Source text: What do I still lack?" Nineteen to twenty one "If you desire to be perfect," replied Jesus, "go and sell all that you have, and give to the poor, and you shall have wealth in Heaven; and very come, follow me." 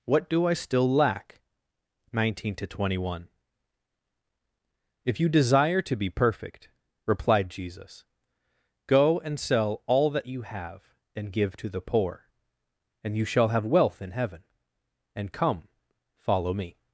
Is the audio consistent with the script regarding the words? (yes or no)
no